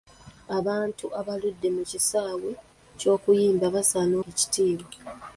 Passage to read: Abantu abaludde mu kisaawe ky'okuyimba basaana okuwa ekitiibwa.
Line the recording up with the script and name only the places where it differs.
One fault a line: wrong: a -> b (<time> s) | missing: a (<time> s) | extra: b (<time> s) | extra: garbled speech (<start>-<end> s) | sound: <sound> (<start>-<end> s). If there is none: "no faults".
missing: okuwa (4.2 s)